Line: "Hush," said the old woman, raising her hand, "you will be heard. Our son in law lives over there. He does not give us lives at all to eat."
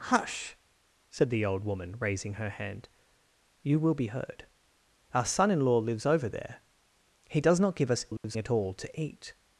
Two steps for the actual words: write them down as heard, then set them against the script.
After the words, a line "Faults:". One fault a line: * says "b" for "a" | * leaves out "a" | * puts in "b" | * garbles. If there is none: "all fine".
"Hush," said the old woman, raising her hand, "you will be heard. Our son in law lives over there. He does not give us lives at all to eat."
Faults:
all fine